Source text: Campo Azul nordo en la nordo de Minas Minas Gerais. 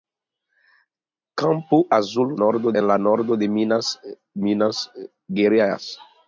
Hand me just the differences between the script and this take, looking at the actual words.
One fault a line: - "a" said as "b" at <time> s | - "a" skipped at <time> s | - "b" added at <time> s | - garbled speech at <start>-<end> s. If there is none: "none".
none